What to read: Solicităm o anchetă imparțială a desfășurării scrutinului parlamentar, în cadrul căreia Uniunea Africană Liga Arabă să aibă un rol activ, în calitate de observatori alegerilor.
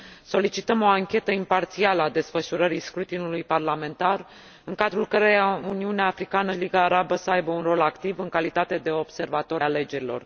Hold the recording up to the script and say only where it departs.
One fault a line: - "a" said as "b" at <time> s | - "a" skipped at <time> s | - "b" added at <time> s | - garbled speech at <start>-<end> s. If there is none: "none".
none